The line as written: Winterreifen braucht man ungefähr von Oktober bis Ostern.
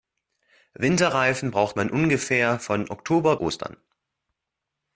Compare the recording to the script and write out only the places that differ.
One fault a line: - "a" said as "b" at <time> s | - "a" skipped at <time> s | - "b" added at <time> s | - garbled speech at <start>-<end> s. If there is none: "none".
- "bis" skipped at 3.4 s